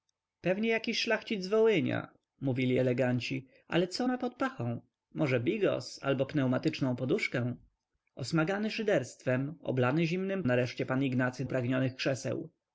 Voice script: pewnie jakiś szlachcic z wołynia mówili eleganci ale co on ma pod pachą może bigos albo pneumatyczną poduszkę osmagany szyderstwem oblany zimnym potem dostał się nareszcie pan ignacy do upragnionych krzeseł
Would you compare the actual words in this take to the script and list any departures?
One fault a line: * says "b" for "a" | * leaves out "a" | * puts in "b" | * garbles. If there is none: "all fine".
* leaves out "on"
* leaves out "potem dostał się"
* leaves out "do"